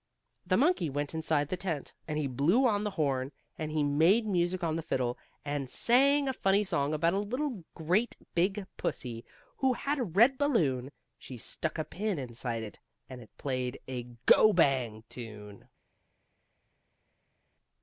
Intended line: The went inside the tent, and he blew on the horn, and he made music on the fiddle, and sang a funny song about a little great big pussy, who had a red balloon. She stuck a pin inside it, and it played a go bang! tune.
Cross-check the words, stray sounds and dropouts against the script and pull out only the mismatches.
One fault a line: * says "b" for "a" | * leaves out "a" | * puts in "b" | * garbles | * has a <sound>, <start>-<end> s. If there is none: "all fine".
* puts in "monkey"